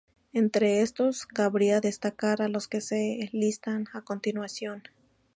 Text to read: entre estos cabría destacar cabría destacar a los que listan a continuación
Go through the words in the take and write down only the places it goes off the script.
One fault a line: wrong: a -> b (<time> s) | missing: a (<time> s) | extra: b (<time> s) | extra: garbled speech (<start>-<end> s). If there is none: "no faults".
missing: cabría destacar (2.4 s)
extra: se (2.8 s)